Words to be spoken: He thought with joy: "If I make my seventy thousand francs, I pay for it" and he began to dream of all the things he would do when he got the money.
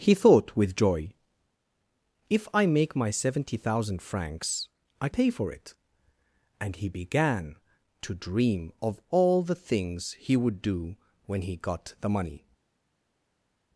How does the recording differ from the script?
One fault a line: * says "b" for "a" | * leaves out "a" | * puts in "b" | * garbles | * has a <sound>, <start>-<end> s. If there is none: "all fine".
all fine